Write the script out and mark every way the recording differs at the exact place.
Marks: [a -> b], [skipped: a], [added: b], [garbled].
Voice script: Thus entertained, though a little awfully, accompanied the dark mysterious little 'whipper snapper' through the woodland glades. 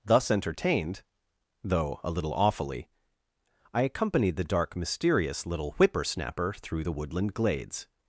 Thus entertained, though a little awfully, [added: I] accompanied the dark mysterious little 'whipper snapper' through the woodland glades.